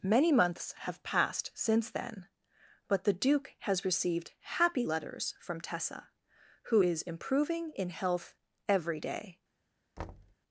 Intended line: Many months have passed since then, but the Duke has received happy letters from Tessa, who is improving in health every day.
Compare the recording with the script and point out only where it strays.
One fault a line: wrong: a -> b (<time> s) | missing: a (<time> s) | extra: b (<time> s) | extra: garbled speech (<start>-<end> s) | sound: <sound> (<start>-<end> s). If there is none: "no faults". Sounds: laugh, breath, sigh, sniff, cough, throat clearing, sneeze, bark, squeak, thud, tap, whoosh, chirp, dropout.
sound: thud (10.0-10.4 s)